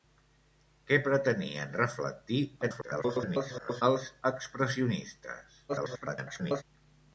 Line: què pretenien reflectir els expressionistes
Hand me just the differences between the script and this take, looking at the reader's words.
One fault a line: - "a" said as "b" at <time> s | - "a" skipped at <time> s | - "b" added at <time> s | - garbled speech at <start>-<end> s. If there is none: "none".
- garbled speech at 2.6-3.8 s
- garbled speech at 5.7-6.6 s